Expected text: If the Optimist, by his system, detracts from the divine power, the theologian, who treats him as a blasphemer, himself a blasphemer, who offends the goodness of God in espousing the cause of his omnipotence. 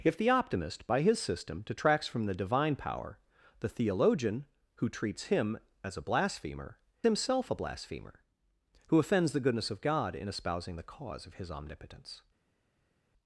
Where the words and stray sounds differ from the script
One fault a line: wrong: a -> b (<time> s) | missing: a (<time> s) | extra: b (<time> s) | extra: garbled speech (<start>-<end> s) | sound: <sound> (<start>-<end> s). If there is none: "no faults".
no faults